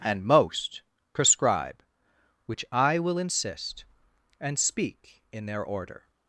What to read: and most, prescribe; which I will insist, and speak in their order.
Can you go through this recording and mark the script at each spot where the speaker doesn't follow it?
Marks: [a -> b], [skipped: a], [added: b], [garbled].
and most, prescribe; which I will insist, and speak in their order.